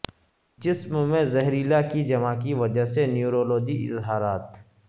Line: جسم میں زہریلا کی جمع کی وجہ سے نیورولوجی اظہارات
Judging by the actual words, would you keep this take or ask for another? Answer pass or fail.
pass